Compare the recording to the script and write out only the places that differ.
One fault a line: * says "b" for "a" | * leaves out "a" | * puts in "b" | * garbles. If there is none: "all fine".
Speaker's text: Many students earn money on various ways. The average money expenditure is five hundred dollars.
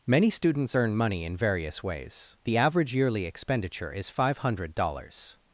* says "in" for "on"
* says "yearly" for "money"